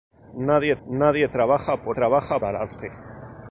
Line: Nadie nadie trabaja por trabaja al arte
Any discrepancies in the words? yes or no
no